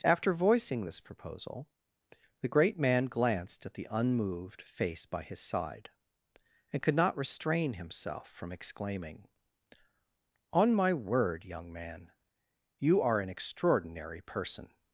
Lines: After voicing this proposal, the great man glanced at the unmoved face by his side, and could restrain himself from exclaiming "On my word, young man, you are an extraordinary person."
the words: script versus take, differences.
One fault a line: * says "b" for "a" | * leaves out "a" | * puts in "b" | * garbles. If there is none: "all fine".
* puts in "not"